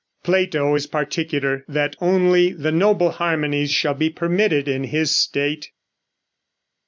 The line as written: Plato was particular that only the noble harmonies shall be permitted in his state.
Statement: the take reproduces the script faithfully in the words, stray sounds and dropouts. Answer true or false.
false